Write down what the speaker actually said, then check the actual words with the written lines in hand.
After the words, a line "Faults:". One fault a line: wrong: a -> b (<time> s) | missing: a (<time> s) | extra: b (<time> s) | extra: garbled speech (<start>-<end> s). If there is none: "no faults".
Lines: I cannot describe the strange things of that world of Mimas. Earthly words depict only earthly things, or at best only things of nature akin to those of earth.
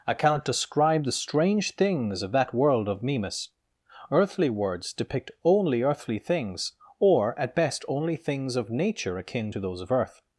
I cannot describe the strange things of that world of Mimas. Earthly words depict only earthly things, or at best only things of nature akin to those of earth.
Faults:
no faults